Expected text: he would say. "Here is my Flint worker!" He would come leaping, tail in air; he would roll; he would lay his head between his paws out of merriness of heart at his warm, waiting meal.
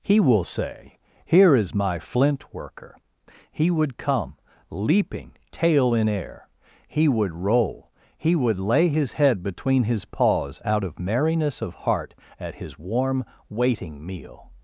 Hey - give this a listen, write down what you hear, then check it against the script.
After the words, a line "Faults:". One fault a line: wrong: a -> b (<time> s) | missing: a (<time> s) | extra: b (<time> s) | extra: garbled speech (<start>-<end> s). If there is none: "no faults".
he will say. "Here is my Flint worker!" He would come leaping, tail in air; he would roll; he would lay his head between his paws out of merriness of heart at his warm, waiting meal.
Faults:
wrong: would -> will (0.2 s)